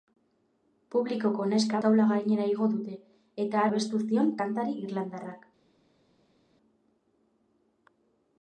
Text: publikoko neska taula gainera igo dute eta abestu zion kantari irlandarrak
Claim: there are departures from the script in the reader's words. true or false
false